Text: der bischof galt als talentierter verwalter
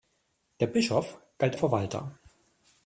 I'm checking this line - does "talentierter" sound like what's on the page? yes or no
no